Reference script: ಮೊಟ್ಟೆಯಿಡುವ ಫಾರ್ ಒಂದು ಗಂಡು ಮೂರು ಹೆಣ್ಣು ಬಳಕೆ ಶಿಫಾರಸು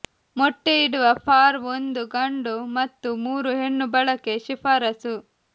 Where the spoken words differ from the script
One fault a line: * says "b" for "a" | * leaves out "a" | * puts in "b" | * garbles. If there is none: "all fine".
* puts in "ಮತ್ತು"